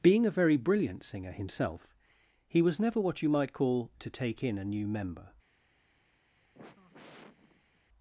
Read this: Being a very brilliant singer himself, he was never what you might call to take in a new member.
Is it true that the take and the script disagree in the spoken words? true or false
false